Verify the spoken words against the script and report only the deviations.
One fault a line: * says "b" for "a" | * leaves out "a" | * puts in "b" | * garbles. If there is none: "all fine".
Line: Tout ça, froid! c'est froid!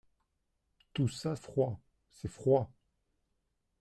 all fine